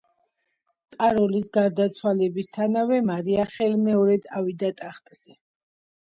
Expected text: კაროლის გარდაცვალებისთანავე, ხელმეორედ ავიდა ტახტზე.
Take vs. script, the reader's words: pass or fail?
fail